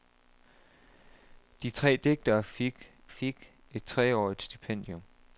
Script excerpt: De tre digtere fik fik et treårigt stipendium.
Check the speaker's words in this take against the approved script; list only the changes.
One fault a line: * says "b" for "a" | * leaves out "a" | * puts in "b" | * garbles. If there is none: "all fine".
all fine